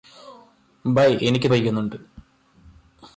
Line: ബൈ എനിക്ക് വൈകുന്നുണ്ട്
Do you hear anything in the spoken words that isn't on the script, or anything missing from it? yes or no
no